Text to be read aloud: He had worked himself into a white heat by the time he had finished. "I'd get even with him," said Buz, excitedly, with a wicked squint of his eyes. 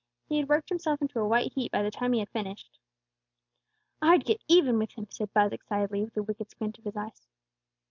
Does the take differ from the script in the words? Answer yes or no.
no